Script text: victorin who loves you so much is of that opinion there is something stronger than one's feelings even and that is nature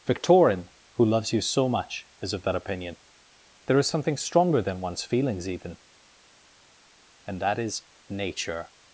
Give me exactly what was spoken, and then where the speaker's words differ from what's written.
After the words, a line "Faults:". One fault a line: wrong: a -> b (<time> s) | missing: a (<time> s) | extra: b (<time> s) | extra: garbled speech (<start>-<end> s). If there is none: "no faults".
victorin who loves you so much is of that opinion there is something stronger than one's feelings even and that is nature
Faults:
no faults